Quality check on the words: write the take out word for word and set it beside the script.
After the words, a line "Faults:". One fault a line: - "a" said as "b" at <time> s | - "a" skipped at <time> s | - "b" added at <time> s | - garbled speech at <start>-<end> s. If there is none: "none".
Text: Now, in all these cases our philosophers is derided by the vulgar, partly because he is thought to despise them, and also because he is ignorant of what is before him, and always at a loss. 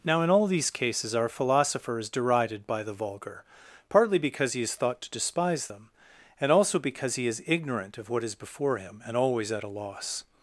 Now, in all these cases our philosopher is derided by the vulgar, partly because he is thought to despise them, and also because he is ignorant of what is before him, and always at a loss.
Faults:
- "philosophers" said as "philosopher" at 1.3 s